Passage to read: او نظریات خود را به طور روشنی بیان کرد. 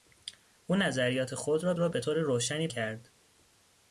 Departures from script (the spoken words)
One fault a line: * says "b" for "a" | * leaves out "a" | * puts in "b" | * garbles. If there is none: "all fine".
* puts in "را"
* leaves out "بیان"